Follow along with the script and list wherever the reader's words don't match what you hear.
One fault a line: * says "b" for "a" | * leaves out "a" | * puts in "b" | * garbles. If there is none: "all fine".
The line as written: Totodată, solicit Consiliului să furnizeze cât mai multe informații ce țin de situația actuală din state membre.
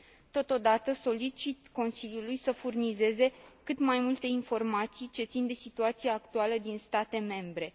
all fine